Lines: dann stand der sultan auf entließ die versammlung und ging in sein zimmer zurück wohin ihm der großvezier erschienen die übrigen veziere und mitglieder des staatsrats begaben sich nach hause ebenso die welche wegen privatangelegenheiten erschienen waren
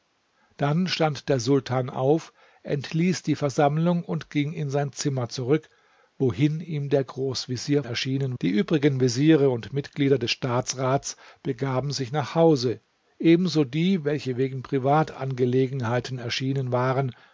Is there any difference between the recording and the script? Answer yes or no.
no